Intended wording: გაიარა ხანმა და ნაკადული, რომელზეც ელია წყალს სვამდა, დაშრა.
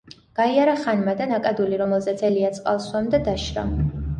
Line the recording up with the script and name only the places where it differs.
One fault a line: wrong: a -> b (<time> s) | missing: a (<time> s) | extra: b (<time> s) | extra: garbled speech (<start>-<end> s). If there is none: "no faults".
no faults